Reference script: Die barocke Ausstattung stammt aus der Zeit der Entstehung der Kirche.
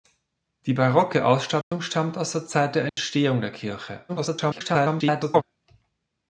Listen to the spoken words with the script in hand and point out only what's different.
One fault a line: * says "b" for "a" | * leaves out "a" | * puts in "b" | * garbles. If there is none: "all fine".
* garbles